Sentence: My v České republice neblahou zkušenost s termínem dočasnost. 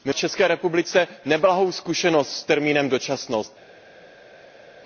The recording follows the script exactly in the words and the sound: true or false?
true